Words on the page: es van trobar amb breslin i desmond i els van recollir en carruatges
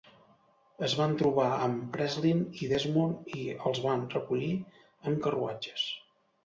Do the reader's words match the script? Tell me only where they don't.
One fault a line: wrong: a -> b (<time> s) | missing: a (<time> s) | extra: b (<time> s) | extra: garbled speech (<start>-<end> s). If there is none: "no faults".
no faults